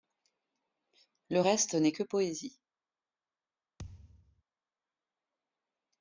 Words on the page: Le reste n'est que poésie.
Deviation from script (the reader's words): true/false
false